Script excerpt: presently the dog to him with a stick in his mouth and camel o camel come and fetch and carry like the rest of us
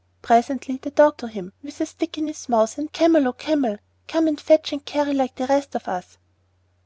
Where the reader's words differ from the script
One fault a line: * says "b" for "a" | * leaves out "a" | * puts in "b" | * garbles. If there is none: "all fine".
all fine